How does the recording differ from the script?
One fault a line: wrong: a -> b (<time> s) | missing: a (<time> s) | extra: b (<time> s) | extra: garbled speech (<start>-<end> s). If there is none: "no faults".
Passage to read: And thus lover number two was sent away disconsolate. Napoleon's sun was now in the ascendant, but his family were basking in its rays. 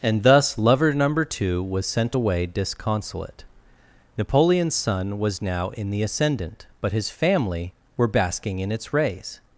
no faults